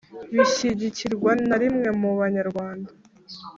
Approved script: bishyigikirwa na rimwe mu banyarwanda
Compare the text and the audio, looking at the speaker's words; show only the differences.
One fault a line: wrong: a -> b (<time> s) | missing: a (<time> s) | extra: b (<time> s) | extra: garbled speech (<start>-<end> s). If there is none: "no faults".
no faults